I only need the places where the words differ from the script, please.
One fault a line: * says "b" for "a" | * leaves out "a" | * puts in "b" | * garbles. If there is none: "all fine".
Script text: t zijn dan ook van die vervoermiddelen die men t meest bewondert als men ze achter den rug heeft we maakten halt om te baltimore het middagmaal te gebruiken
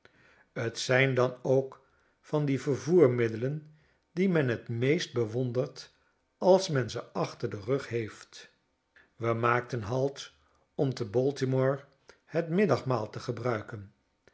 all fine